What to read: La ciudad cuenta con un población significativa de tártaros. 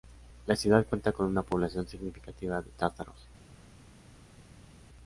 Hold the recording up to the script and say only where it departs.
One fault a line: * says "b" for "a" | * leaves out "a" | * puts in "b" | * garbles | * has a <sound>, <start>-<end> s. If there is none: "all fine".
* says "una" for "un"